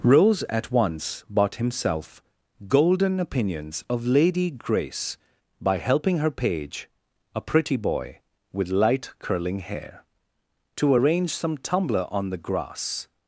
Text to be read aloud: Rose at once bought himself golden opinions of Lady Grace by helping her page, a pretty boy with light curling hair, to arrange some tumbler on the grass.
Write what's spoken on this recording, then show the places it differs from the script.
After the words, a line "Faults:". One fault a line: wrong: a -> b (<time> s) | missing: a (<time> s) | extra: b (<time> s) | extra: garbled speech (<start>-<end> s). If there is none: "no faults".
Rose at once bought himself golden opinions of Lady Grace by helping her page, a pretty boy with light curling hair, to arrange some tumbler on the grass.
Faults:
no faults